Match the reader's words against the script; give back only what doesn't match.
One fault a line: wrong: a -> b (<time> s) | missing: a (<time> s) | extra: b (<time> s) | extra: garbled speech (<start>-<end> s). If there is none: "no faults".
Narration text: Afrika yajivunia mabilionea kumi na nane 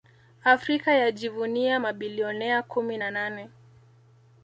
no faults